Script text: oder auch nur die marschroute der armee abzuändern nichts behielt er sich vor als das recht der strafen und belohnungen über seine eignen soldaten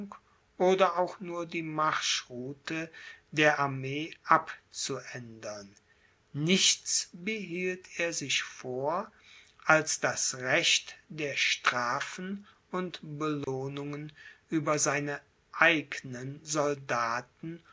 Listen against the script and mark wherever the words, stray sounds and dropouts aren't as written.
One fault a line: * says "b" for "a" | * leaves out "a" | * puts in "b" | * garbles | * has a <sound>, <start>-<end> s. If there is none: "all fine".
* has a dropout, 13.4-13.5 s